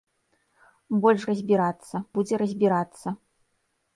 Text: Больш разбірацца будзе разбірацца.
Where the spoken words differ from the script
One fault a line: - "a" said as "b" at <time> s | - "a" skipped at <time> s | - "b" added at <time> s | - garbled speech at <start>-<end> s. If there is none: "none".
none